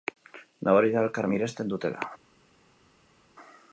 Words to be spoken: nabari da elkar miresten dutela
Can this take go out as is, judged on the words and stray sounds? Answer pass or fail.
pass